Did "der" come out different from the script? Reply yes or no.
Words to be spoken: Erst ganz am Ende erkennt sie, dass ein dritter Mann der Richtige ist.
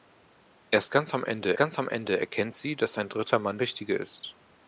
yes